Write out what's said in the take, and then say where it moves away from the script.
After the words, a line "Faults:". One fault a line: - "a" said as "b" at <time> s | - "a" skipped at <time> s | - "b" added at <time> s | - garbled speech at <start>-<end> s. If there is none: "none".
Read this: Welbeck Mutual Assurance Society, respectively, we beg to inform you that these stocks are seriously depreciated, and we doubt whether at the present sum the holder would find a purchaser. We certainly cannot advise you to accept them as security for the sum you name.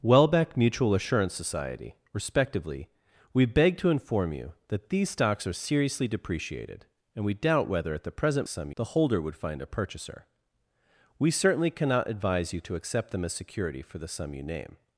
Welbeck Mutual Assurance Society, respectively, we beg to inform you that these stocks are seriously depreciated, and we doubt whether at the present sum the holder would find a purchaser. We certainly cannot advise you to accept them as security for the sum you name.
Faults:
none